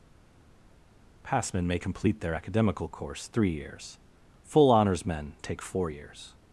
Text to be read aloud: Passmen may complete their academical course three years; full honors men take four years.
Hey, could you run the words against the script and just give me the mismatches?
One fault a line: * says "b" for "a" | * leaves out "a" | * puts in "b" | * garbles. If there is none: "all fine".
all fine